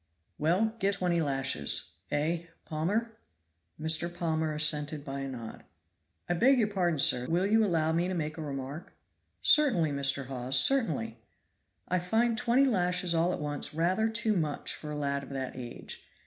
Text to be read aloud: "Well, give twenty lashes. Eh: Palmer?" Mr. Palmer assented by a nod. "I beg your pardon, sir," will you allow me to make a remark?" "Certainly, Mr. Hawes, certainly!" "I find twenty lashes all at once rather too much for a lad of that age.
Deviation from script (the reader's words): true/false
false